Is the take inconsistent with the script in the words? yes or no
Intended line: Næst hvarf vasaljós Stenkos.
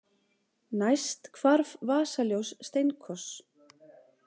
no